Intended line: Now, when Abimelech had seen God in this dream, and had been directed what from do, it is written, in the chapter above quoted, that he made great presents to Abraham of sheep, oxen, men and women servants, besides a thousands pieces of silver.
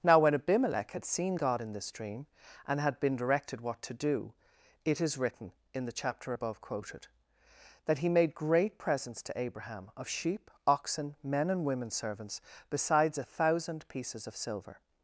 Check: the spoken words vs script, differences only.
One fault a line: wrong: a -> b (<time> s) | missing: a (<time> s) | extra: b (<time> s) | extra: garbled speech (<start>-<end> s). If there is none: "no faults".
wrong: from -> to (3.8 s)
wrong: thousands -> thousand (13.2 s)